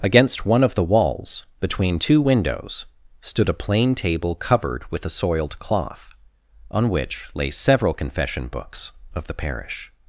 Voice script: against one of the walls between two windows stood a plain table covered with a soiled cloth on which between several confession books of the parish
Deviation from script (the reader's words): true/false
true